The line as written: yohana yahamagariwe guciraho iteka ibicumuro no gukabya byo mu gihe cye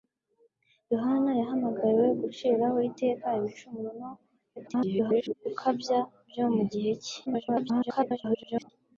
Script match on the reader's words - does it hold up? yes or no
no